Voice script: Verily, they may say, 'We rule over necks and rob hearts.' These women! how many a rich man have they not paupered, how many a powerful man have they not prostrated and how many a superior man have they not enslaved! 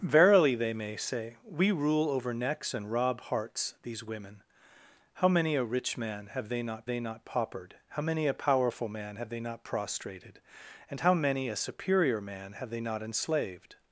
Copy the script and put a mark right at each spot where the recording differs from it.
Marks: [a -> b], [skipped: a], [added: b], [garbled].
Verily, they may say, 'We rule over necks and rob hearts.' These women! how many a rich man have they not [added: they not] paupered, how many a powerful man have they not prostrated and how many a superior man have they not enslaved!